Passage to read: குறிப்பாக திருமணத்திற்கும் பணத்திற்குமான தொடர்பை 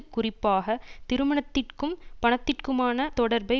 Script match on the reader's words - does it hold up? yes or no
yes